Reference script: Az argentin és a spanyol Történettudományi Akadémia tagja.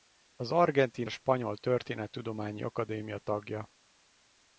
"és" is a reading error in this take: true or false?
true